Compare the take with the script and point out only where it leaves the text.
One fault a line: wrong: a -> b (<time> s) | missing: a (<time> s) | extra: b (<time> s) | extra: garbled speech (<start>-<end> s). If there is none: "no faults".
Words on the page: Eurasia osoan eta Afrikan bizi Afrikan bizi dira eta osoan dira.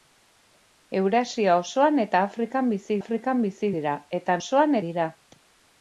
no faults